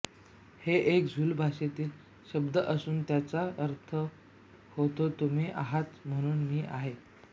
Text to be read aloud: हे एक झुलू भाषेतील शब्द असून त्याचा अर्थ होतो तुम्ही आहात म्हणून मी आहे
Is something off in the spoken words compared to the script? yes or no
no